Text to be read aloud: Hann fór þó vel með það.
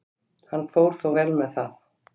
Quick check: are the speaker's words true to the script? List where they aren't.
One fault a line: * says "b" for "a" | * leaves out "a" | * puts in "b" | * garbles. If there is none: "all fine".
all fine